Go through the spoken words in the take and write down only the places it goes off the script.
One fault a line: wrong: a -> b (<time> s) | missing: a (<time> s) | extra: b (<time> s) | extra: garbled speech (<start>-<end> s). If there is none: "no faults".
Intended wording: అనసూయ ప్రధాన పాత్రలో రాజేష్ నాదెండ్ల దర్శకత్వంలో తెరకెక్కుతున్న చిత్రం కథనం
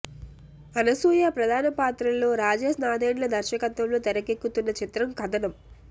no faults